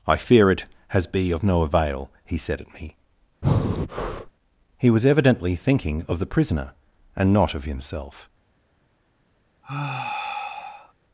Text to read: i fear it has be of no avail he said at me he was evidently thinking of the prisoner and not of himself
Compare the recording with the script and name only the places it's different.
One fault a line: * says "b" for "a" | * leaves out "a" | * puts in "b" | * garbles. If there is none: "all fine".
all fine